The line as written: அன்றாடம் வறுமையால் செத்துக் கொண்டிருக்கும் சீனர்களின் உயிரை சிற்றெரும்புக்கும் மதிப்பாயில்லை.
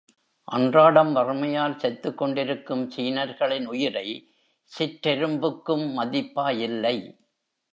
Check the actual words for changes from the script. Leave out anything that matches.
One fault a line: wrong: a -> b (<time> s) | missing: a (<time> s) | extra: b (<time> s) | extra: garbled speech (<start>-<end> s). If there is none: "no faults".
no faults